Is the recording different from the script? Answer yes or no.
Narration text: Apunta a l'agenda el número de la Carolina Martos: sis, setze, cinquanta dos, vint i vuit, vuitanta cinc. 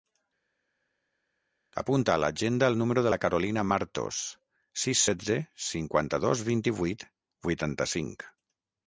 no